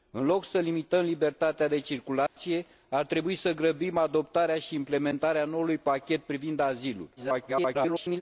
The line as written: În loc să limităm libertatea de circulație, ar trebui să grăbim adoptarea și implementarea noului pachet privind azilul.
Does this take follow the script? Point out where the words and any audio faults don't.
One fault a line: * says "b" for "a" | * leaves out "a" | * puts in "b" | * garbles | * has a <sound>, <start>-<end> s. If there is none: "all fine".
* has a dropout, 2.3-2.4 s
* garbles